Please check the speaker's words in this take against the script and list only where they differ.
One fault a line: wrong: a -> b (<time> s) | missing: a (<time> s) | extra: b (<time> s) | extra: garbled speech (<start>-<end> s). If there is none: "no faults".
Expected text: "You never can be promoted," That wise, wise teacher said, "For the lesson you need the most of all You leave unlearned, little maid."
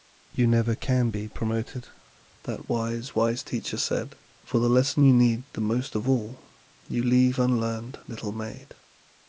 no faults